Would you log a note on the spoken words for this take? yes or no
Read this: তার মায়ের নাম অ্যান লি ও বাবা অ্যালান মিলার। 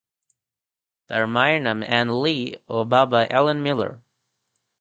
no